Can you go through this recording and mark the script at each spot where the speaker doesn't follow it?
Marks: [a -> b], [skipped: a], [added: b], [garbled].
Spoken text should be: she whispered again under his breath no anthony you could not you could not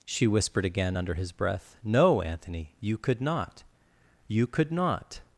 she whispered again under his breath no anthony you could not you could not